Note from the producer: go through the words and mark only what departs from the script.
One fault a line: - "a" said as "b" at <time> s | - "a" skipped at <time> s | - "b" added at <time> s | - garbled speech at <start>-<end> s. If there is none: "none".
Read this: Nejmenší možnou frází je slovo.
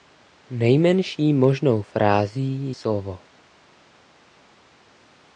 - "je" skipped at 2.8 s